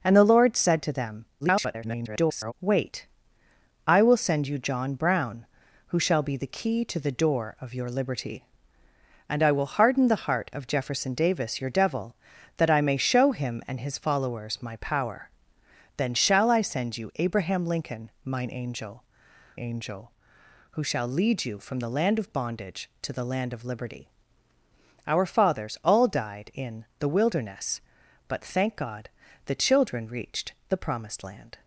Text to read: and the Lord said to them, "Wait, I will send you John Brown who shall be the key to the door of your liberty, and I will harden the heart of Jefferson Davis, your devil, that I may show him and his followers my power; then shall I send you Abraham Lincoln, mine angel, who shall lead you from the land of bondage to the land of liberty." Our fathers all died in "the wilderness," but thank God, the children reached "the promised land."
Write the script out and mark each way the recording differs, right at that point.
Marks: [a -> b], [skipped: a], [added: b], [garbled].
and the Lord said to them, [garbled] "Wait, I will send you John Brown who shall be the key to the door of your liberty, and I will harden the heart of Jefferson Davis, your devil, that I may show him and his followers my power; then shall I send you Abraham Lincoln, mine angel, [added: angel] who shall lead you from the land of bondage to the land of liberty." Our fathers all died in "the wilderness," but thank God, the children reached "the promised land."